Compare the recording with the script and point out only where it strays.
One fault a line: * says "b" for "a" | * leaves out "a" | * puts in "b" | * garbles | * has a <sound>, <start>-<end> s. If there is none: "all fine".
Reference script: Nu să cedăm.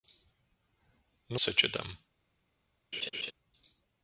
* has a laugh, 2.9-3.3 s